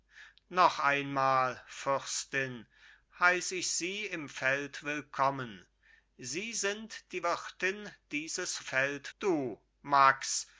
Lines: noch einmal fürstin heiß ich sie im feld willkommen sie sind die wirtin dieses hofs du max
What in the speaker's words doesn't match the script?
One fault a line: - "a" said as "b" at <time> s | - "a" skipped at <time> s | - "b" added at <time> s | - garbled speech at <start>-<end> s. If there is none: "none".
- "hofs" said as "feld" at 8.6 s